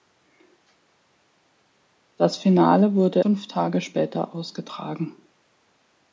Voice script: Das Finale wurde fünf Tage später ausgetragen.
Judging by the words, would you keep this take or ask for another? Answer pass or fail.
pass